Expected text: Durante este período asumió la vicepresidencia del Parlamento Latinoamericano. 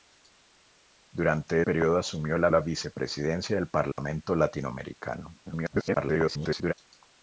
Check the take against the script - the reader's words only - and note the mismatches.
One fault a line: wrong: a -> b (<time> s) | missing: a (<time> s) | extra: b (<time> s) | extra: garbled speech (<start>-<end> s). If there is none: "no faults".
missing: este (1.6 s)
extra: la (2.5 s)
extra: garbled speech (5.4-6.7 s)